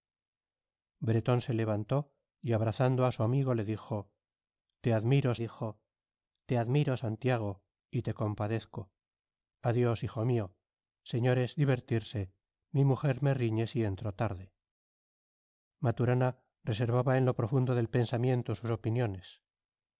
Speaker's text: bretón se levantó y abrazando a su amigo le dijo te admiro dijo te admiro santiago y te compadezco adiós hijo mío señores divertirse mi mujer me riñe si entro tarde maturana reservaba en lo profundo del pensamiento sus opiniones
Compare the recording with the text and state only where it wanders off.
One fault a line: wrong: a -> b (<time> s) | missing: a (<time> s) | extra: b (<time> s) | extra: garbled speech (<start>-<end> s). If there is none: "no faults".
no faults